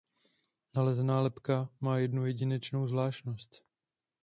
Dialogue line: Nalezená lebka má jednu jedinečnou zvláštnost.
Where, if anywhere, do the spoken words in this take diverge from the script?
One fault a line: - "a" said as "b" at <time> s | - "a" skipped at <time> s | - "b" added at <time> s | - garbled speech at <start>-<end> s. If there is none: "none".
none